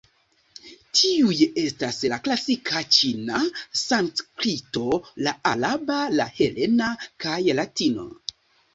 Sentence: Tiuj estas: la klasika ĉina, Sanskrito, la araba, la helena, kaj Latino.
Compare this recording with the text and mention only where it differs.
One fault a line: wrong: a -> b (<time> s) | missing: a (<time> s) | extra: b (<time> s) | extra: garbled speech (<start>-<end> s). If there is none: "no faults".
no faults